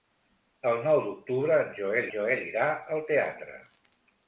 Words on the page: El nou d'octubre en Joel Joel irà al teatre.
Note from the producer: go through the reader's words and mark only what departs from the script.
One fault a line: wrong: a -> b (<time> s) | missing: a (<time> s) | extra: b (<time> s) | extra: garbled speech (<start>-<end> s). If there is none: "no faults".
no faults